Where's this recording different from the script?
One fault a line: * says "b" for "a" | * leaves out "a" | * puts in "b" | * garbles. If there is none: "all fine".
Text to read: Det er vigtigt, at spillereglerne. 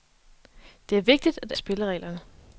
all fine